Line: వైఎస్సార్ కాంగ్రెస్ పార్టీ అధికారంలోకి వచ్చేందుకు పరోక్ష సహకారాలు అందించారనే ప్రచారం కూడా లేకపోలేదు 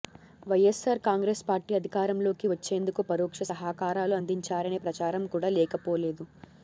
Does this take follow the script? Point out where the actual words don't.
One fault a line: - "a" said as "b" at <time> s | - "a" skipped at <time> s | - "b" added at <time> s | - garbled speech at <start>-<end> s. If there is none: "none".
none